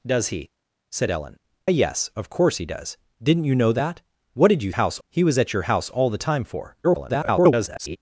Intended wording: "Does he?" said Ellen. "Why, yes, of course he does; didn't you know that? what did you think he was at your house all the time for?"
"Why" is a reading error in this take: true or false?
true